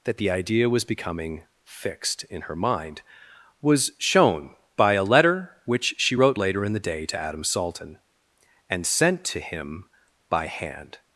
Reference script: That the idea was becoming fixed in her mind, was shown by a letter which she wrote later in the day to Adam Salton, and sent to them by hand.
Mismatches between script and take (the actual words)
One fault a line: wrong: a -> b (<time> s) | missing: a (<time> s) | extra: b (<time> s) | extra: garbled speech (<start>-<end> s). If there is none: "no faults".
wrong: them -> him (9.4 s)